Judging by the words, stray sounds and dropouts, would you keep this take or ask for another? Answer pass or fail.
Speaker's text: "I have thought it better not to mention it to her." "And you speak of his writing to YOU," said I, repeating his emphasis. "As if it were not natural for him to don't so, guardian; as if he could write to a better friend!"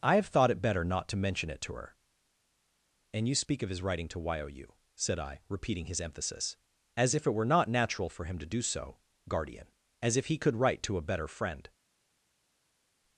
fail